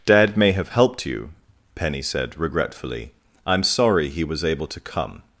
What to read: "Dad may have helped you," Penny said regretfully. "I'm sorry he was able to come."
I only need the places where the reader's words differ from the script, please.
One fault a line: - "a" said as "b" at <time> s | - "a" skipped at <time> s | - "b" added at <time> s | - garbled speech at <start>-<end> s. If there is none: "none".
none